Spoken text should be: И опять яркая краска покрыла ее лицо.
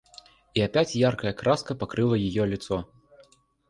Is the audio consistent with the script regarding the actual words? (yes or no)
yes